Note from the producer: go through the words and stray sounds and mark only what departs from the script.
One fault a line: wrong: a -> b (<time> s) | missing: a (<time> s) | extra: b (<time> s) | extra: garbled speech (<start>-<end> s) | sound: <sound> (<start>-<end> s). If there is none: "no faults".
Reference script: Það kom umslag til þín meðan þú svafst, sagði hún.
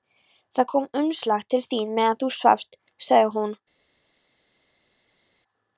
no faults